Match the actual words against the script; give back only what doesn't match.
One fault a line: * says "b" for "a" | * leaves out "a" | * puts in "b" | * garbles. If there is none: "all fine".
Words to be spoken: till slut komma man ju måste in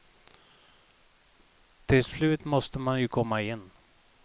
* says "måste" for "komma"
* says "komma" for "måste"